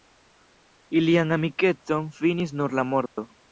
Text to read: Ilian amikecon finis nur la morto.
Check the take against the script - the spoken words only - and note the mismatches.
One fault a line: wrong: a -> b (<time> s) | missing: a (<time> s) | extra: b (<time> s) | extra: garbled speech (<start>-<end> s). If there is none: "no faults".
no faults